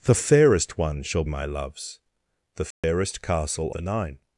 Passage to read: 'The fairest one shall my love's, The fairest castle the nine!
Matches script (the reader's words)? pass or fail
pass